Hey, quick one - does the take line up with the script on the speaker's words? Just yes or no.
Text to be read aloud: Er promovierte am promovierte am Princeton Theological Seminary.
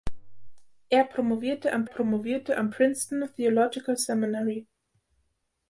yes